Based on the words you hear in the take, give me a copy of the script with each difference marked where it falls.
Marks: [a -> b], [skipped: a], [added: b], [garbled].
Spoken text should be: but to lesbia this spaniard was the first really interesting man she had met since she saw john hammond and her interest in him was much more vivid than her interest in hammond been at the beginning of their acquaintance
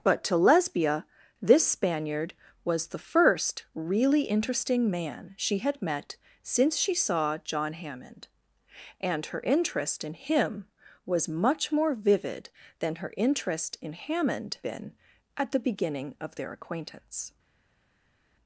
but to lesbia this spaniard was the first really interesting man she had met since she saw john hammond and her interest in him was much more vivid than her interest in hammond been at the beginning of their acquaintance